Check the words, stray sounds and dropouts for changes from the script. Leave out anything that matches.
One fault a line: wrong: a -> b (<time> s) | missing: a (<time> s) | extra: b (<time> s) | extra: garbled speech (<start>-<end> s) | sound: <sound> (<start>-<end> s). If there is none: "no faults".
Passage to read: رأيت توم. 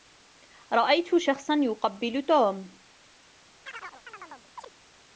extra: شخصا يقبّل (1.2 s)
sound: chirp (3.6-4.7 s)